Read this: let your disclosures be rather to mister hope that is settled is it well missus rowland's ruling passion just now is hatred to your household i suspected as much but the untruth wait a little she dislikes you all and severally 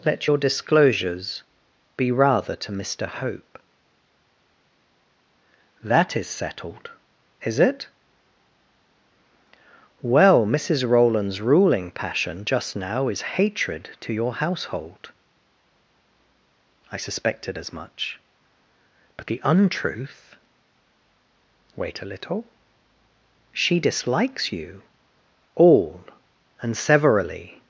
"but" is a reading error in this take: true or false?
false